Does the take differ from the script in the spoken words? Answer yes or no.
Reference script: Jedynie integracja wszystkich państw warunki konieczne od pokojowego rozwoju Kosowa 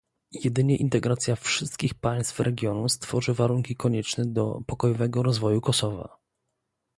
yes